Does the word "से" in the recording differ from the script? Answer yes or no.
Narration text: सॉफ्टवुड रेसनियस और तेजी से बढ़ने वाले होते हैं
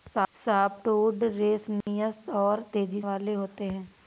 yes